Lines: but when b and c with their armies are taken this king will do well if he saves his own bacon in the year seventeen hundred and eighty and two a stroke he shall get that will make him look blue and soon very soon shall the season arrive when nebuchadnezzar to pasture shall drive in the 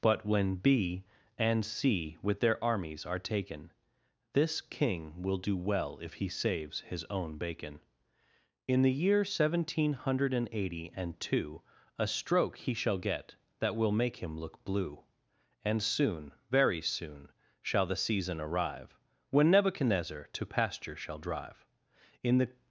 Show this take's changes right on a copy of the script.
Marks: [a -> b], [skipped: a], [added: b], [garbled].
but when b and c with their armies are taken this king will do well if he saves his own bacon in the year seventeen hundred and eighty and two a stroke he shall get that will make him look blue and soon very soon shall the season arrive when nebuchadnezzar to pasture shall drive in the